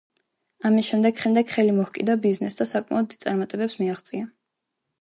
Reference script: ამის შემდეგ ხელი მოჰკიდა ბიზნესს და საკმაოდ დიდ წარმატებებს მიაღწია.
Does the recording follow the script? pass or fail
fail